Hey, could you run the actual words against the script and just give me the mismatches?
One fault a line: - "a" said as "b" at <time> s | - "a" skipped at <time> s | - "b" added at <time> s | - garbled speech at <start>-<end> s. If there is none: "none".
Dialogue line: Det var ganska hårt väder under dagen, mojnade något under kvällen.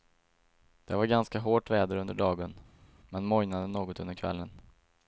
- "men" added at 3.1 s